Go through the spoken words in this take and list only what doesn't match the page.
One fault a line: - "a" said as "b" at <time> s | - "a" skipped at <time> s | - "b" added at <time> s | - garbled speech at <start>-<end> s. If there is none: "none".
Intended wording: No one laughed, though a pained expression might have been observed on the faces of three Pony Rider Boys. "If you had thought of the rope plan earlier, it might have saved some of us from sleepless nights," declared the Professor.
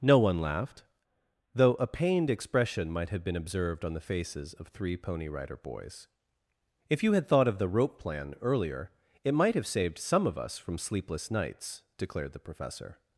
none